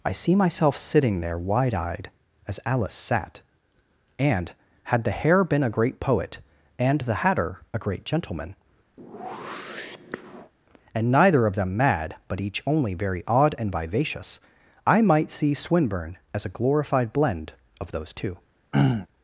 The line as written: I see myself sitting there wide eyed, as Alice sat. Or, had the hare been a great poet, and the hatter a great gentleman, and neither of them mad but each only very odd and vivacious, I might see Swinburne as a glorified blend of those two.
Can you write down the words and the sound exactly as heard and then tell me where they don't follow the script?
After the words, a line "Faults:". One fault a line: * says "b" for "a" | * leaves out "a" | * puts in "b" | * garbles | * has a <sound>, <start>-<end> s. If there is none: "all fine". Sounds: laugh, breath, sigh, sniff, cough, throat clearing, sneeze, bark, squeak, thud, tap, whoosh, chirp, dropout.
I see myself sitting there wide eyed, as Alice sat. And, had the hare been a great poet, and the hatter a great gentleman, and neither of them mad but each only very odd and vivacious, I might see Swinburne as a glorified blend of those two.
Faults:
* says "And" for "Or"
* has a whoosh, 9.0-10.5 s
* has a throat clearing, 18.7-19.1 s